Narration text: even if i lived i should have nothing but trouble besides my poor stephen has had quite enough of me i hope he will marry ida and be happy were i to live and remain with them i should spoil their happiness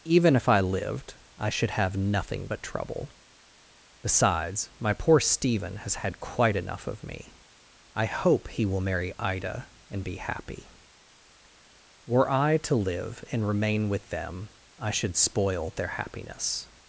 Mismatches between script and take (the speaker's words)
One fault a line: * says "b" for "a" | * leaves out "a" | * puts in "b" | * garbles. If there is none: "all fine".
all fine